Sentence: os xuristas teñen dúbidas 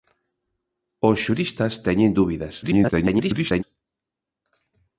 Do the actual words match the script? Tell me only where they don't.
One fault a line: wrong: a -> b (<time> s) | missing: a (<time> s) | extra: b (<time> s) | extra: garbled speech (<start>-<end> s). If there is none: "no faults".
extra: garbled speech (2.6-3.6 s)